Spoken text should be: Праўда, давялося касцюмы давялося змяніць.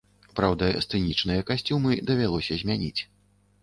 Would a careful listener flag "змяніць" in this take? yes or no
no